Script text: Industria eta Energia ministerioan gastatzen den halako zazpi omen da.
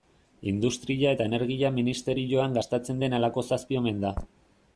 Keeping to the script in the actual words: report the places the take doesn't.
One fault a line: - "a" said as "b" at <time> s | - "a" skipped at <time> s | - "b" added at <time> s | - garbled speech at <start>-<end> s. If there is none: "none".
none